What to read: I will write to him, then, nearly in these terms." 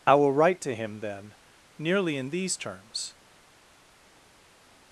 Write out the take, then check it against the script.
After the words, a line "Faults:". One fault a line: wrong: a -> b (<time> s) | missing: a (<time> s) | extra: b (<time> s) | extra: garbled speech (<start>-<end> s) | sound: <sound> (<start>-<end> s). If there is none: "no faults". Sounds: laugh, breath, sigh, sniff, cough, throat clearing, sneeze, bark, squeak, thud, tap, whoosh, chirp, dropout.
I will write to him, then, nearly in these terms."
Faults:
no faults